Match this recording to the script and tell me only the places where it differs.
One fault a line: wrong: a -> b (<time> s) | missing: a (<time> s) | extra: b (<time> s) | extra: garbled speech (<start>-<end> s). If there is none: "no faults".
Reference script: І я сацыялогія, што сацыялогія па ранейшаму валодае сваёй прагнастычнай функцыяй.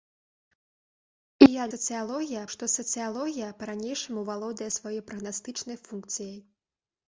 no faults